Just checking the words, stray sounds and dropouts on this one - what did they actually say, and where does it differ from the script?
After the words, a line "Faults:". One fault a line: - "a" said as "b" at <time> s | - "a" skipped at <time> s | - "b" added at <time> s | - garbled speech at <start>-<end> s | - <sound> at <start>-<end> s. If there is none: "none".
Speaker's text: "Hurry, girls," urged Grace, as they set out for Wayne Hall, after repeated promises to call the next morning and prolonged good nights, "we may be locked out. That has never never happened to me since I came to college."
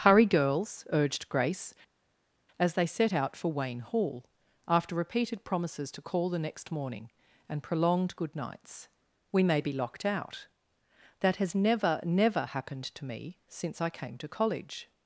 "Hurry, girls," urged Grace, as they set out for Wayne Hall, after repeated promises to call the next morning and prolonged good nights, "we may be locked out. That has never never happened to me since I came to college."
Faults:
none